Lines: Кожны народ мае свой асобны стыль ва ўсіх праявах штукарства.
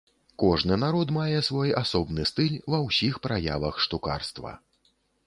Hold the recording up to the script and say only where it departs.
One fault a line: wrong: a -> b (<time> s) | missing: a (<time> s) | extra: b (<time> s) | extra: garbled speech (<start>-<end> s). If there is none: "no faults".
no faults